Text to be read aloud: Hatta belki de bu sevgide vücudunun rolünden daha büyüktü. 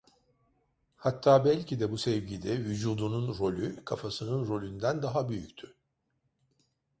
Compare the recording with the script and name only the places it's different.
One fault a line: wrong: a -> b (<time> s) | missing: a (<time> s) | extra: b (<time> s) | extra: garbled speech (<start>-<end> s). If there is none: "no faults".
extra: rolü kafasının (3.4 s)